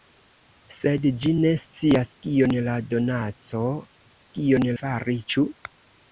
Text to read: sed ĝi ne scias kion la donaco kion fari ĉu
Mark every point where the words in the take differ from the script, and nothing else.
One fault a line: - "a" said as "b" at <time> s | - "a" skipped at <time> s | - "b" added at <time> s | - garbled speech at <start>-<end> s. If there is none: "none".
none